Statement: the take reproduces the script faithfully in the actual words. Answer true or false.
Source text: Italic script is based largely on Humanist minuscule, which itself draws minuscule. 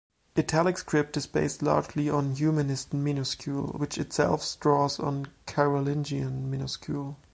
false